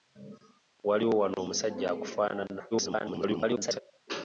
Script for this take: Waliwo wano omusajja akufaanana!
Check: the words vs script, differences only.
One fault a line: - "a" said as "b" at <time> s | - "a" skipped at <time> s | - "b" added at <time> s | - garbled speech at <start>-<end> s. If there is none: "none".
- garbled speech at 2.7-3.8 s